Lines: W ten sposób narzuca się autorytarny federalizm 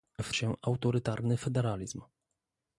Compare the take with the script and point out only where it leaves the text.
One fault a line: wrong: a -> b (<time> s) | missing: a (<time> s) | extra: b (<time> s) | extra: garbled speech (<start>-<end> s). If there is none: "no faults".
missing: ten sposób narzuca (0.3 s)